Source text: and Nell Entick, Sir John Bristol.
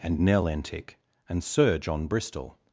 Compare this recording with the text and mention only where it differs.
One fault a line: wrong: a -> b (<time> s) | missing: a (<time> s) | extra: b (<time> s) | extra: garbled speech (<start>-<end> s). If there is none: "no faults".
extra: and (1.3 s)